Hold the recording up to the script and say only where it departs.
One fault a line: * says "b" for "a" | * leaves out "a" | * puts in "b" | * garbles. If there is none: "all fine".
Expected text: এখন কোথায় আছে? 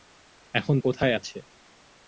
all fine